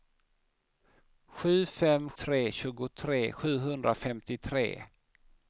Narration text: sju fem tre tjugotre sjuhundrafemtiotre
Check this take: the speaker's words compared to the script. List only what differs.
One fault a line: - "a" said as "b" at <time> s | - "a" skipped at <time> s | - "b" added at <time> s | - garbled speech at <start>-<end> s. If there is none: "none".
none